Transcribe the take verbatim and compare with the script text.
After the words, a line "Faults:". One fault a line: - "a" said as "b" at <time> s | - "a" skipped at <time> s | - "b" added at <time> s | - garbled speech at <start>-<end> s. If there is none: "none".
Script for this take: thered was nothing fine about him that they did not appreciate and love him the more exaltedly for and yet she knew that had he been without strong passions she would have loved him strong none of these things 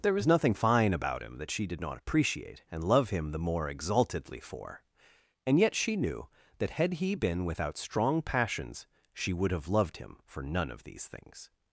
there was nothing fine about him that she did not appreciate and love him the more exaltedly for and yet she knew that had he been without strong passions she would have loved him for none of these things
Faults:
- "thered" said as "there" at 0.0 s
- "they" said as "she" at 1.5 s
- "strong" said as "for" at 10.3 s